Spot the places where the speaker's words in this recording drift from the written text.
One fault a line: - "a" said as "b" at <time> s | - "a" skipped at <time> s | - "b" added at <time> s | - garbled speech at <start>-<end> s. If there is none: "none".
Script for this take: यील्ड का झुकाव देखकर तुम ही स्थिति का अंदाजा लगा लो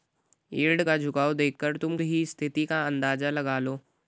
none